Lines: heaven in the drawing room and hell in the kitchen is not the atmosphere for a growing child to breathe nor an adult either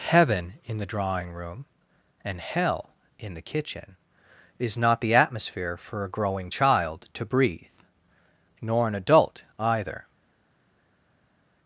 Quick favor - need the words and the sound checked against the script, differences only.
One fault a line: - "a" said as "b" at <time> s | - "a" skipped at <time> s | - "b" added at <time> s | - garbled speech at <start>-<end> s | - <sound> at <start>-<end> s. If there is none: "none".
none